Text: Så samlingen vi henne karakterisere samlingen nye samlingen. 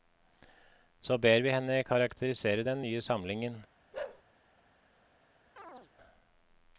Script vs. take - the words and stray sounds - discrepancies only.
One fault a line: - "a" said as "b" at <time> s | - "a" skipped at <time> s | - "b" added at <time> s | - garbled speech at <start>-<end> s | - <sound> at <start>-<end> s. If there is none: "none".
- "samlingen" said as "ber" at 1.2 s
- "samlingen" said as "den" at 2.7 s
- bark at 3.9-4.2 s
- chirp at 5.6-5.9 s